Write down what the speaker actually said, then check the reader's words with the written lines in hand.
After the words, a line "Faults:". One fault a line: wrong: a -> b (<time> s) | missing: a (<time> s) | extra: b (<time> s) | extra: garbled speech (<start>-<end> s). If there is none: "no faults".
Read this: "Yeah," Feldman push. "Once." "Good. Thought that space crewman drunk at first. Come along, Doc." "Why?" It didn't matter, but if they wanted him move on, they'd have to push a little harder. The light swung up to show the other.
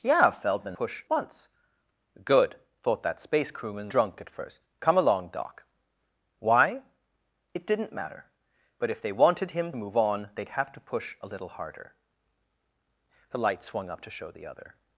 "Yeah," Feldman push. "Once." "Good. Thought that space crewman drunk at first. Come along, Doc." "Why?" It didn't matter, but if they wanted him move on, they'd have to push a little harder. The light swung up to show the other.
Faults:
no faults